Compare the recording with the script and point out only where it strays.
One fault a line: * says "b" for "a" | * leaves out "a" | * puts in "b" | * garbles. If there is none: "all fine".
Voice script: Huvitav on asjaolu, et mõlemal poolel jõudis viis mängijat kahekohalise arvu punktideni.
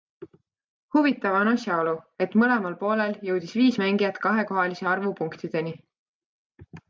all fine